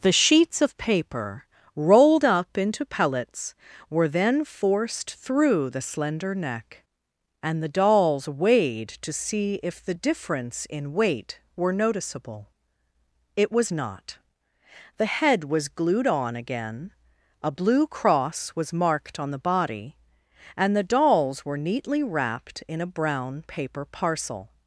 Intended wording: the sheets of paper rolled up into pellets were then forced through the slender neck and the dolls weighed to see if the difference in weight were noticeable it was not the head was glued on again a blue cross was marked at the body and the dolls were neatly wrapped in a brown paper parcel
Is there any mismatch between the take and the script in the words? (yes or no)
yes